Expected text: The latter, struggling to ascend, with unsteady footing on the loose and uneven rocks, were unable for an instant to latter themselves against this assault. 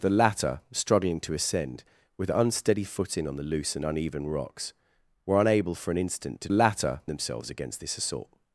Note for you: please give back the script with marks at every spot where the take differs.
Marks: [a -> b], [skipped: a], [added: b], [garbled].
The latter, struggling to ascend, with unsteady footing on the loose and uneven rocks, were unable for an instant to latter themselves against this assault.